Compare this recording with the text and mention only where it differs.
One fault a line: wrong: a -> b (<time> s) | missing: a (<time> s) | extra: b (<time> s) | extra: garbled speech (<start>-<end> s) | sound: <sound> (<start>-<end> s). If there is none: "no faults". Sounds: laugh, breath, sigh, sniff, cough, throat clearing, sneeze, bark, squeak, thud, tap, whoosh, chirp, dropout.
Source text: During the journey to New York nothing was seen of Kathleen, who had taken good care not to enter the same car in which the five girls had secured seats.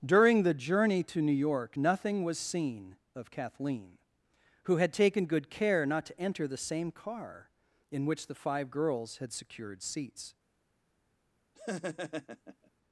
sound: laugh (11.6-12.7 s)